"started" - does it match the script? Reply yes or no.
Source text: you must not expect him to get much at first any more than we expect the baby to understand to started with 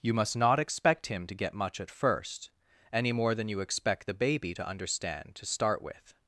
no